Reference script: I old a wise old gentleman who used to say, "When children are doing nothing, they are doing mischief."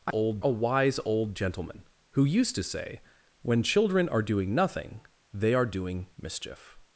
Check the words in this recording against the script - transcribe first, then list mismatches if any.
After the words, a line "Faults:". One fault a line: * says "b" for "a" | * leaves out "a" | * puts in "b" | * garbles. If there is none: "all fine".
I old a wise old gentleman who used to say, "When children are doing nothing, they are doing mischief."
Faults:
all fine